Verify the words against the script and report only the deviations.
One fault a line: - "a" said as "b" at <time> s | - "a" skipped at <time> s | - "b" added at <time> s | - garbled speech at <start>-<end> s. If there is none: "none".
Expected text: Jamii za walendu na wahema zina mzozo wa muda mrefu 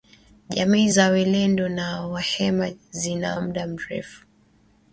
- "mzozo" skipped at 3.4 s